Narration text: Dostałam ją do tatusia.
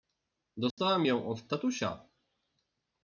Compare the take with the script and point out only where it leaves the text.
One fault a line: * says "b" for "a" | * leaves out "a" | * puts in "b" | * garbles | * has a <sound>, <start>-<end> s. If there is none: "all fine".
* has a dropout, 0.7-0.8 s
* says "od" for "do"